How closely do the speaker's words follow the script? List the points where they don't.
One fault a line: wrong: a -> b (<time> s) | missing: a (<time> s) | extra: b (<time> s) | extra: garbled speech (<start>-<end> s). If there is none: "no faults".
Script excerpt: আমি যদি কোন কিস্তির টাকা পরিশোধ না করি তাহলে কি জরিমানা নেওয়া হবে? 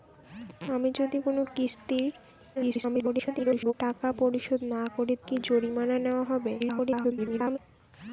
extra: garbled speech (2.6-3.7 s)
missing: তাহলে (5.1 s)
extra: garbled speech (6.6-7.6 s)